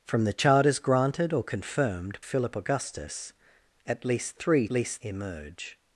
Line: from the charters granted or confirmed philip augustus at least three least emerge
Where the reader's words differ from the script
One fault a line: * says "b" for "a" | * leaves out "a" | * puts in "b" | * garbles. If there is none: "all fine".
all fine